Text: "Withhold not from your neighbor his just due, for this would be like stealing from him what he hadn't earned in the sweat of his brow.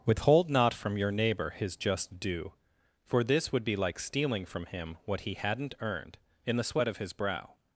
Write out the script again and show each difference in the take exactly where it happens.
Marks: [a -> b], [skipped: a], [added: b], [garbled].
"Withhold not from your neighbor his just due, for this would be like stealing from him what he hadn't earned in the sweat of his brow.